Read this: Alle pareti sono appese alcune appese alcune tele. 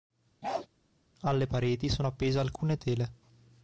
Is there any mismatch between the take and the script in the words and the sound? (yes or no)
yes